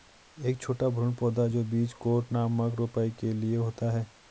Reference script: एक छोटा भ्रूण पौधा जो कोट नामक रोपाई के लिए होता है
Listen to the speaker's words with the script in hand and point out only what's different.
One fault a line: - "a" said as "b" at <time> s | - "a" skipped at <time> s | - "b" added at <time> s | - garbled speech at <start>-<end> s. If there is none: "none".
- "बीज" added at 1.6 s